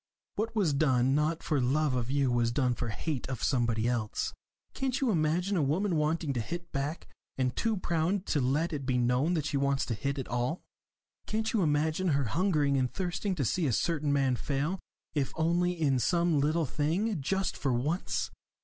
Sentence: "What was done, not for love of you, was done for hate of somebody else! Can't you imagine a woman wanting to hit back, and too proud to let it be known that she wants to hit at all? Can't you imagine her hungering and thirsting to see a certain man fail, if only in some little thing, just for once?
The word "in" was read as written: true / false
true